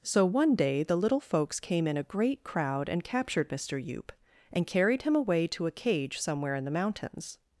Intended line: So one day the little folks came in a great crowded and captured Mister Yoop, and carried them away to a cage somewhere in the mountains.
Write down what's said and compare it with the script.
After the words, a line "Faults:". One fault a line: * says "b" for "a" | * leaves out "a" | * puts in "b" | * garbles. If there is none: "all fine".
So one day the little folks came in a great crowd and captured Mister Yoop, and carried him away to a cage somewhere in the mountains.
Faults:
* says "crowd" for "crowded"
* says "him" for "them"